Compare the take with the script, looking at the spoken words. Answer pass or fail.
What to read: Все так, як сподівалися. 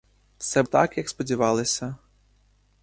pass